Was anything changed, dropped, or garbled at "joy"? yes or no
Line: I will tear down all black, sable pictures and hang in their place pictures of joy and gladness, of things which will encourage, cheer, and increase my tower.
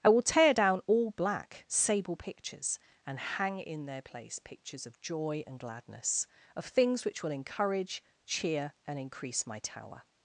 no